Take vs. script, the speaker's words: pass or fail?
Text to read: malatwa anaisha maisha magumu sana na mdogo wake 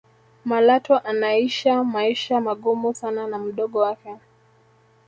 pass